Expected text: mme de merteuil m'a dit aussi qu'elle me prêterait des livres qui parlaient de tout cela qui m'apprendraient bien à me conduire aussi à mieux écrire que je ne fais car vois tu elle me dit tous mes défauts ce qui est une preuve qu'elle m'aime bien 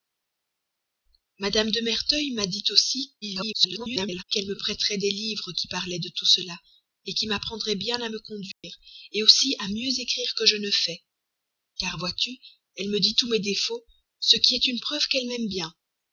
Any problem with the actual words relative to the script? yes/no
yes